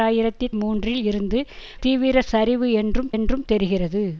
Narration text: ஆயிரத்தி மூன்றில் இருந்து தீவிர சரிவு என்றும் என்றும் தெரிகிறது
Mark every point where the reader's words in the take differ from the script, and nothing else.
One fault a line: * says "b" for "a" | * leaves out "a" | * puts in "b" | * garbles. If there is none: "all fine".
all fine